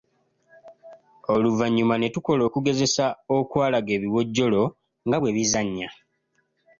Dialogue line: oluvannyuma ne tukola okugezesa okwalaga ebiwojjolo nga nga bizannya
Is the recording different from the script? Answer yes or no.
yes